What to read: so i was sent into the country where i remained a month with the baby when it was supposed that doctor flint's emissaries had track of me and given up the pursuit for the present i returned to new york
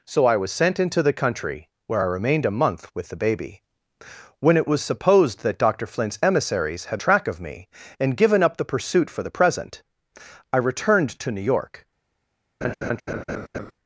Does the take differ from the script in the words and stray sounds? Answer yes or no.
yes